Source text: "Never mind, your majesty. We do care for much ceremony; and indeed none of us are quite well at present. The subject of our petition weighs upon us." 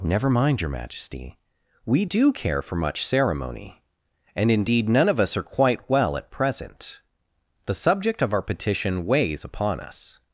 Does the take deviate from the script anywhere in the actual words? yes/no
no